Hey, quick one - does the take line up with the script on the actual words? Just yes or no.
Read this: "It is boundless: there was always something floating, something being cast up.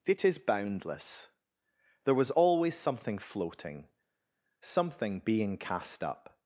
yes